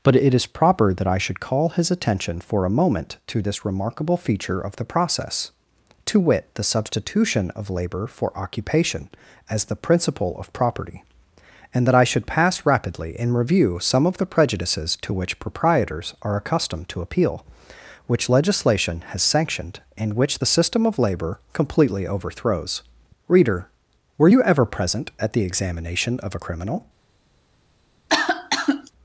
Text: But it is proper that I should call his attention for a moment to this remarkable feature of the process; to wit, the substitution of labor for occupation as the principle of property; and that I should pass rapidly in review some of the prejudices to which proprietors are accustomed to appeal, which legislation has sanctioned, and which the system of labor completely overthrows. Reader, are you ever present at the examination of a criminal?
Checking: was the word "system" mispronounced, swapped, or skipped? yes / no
no